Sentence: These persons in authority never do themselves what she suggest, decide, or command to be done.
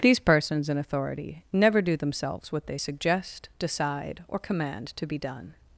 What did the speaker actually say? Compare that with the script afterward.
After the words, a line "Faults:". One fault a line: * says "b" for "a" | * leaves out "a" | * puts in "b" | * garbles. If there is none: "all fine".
These persons in authority never do themselves what they suggest, decide, or command to be done.
Faults:
* says "they" for "she"